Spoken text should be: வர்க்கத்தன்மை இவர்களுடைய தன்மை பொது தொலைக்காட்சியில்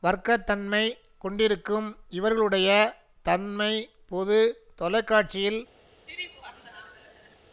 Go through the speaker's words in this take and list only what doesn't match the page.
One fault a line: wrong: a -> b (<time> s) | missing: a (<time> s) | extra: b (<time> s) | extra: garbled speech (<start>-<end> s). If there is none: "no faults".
extra: கொண்டிருக்கும் (1.2 s)